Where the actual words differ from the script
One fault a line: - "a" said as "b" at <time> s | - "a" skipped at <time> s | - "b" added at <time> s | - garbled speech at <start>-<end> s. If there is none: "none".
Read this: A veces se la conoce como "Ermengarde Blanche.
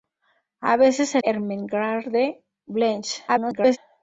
- "la conoce como" skipped at 1.2 s
- garbled speech at 3.3-3.8 s